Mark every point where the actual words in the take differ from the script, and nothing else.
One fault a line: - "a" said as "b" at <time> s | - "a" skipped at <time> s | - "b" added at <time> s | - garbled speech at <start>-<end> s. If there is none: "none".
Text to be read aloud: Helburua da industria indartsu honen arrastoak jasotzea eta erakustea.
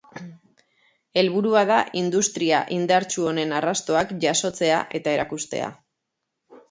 none